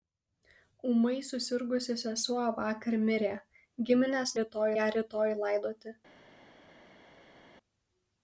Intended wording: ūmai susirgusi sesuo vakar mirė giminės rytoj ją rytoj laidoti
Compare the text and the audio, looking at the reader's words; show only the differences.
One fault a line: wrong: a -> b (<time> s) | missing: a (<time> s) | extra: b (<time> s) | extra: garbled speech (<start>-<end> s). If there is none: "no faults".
no faults